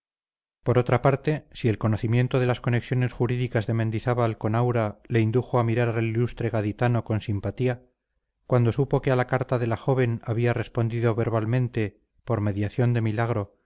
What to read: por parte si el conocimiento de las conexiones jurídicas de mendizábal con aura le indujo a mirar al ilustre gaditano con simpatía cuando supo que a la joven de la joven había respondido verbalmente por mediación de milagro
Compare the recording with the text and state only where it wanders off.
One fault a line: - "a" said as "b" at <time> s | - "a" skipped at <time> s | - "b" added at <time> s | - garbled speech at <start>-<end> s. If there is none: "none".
- "otra" added at 0.8 s
- "joven" said as "carta" at 9.3 s